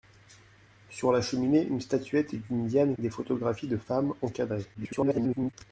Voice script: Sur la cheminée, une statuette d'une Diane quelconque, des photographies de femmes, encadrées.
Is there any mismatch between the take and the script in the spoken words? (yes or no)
yes